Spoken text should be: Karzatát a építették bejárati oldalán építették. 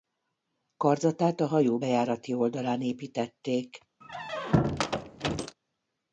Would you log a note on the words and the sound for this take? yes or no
yes